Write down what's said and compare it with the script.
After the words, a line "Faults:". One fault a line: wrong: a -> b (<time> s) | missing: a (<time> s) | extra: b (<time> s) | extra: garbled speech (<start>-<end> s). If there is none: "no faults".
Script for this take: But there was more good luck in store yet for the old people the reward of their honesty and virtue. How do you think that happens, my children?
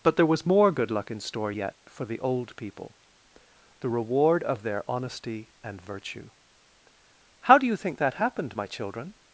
But there was more good luck in store yet for the old people the reward of their honesty and virtue. How do you think that happened, my children?
Faults:
wrong: happens -> happened (8.2 s)